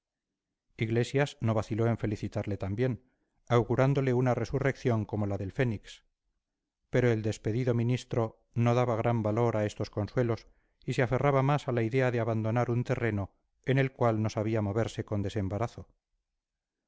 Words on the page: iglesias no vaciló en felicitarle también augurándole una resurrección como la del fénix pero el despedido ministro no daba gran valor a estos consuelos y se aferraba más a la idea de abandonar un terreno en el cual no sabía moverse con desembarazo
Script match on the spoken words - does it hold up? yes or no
yes